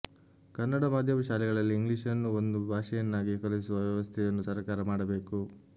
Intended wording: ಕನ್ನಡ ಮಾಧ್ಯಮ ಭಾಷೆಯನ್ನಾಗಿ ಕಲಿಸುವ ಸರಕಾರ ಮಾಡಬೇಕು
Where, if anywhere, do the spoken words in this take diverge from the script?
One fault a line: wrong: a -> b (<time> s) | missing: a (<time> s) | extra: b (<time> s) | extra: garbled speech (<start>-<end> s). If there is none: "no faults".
extra: ಶಾಲೆಗಳಲ್ಲಿ ಇಂಗ್ಲಿಷನ್ನು ಒಂದು (1.3 s)
extra: ವ್ಯವಸ್ಥೆಯನ್ನು (3.9 s)